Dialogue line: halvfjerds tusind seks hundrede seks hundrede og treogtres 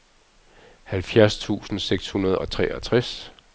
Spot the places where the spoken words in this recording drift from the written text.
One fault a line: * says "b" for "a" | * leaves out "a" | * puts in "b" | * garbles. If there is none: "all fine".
* leaves out "seks hundrede"